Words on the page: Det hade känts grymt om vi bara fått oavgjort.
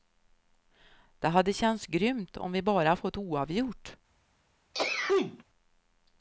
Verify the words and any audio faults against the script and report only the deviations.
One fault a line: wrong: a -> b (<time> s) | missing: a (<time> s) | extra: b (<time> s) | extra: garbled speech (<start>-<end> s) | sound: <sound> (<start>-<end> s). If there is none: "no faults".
sound: sneeze (4.7-5.4 s)